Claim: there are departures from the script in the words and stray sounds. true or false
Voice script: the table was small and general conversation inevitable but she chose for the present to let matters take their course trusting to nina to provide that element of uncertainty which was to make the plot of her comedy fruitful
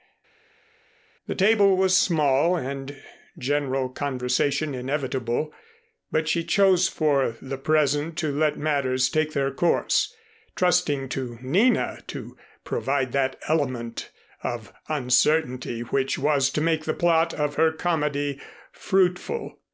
false